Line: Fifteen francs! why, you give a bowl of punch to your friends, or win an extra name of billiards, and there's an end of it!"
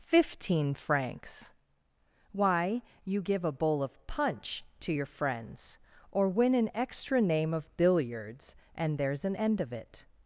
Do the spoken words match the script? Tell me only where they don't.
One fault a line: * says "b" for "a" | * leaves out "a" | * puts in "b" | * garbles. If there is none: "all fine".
all fine